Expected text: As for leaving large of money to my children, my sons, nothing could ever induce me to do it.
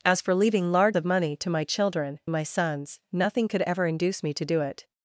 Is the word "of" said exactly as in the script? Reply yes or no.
yes